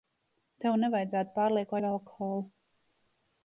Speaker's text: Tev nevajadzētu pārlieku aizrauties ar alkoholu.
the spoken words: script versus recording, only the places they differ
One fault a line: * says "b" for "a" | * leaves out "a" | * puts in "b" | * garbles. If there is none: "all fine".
* leaves out "aizrauties"